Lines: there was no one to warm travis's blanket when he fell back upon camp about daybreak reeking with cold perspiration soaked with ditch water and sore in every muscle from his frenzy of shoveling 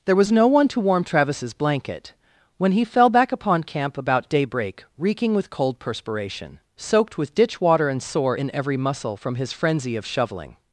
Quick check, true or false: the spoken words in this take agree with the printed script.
true